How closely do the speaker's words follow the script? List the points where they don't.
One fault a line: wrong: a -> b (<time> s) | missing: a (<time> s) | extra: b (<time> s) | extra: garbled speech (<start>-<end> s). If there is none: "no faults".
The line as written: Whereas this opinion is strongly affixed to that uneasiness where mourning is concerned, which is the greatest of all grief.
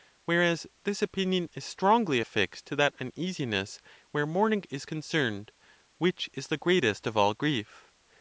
no faults